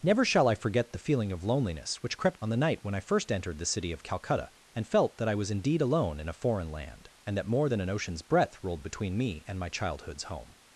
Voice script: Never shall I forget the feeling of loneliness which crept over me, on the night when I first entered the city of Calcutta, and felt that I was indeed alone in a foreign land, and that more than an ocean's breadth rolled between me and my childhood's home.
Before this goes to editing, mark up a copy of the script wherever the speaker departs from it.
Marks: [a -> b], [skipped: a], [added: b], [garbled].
Never shall I forget the feeling of loneliness which crept [skipped: over me,] on the night when I first entered the city of Calcutta, and felt that I was indeed alone in a foreign land, and that more than an ocean's breadth rolled between me and my childhood's home.